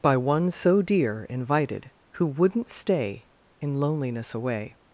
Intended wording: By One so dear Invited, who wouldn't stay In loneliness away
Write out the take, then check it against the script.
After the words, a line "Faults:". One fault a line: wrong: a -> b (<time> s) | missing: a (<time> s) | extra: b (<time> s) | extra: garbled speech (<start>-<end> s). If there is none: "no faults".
By One so dear Invited, who wouldn't stay In loneliness away
Faults:
no faults